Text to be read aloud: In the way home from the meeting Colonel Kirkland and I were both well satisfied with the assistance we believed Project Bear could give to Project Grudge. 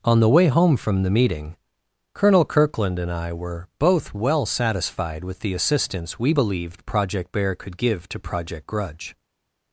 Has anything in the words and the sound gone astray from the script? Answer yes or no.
yes